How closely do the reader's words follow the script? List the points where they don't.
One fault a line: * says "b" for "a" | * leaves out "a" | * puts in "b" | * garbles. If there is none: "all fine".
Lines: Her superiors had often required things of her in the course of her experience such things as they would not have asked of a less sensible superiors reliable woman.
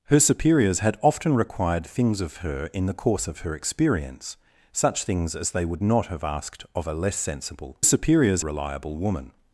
all fine